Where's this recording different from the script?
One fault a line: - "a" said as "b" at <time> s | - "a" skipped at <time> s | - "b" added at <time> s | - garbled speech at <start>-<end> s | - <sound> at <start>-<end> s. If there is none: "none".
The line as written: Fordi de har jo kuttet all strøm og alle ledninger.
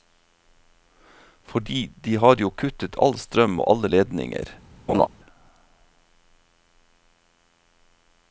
- laugh at 4.9-5.1 s